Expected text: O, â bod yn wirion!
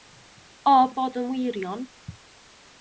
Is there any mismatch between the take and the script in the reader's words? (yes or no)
no